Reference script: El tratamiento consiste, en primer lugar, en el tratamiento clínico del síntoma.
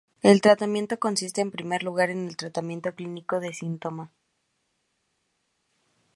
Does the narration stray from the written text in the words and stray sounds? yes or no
no